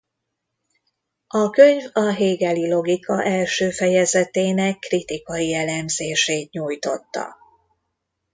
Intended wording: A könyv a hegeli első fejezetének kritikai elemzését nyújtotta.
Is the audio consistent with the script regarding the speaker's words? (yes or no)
no